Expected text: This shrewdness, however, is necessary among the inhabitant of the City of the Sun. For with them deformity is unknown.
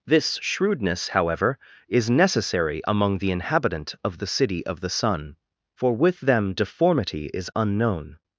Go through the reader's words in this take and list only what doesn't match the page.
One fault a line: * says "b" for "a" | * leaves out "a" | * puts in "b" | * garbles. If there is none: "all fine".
all fine